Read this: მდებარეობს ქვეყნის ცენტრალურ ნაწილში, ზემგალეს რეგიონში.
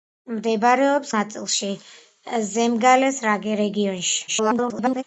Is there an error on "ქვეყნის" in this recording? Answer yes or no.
yes